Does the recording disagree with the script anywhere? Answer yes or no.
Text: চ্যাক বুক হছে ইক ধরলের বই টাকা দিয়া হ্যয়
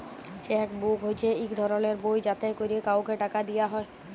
yes